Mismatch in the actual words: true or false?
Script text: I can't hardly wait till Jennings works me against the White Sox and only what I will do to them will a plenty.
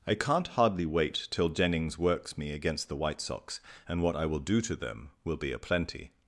true